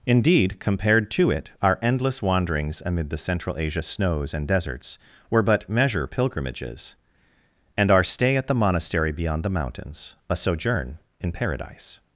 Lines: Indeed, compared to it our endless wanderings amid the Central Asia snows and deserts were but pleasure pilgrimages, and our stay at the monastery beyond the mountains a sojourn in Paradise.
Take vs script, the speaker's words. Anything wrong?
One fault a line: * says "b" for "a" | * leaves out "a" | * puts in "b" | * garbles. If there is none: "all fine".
* says "measure" for "pleasure"